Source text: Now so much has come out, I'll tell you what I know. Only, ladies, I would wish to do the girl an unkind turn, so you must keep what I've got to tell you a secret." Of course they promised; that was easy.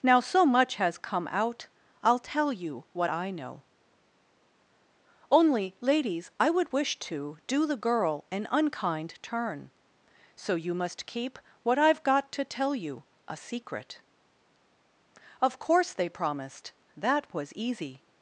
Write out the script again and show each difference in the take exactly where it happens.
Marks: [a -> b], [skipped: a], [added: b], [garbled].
Now so much has come out, I'll tell you what I know. Only, ladies, I would wish to do the girl an unkind turn, so you must keep what I've got to tell you a secret." Of course they promised; that was easy.